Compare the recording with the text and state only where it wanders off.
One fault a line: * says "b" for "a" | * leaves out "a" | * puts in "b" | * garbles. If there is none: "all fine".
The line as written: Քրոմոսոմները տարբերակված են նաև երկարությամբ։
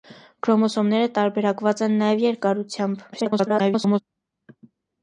* garbles